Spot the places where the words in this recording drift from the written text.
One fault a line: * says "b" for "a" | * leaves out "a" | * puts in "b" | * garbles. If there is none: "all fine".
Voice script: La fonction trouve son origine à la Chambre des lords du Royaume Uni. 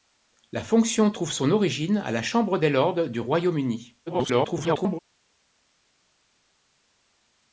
* garbles